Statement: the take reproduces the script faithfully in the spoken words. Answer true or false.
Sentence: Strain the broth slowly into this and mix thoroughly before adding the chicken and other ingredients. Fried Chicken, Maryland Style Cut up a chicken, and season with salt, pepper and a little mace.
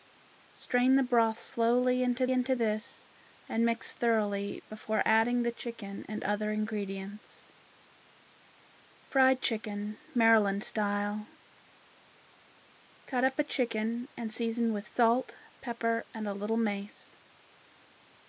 false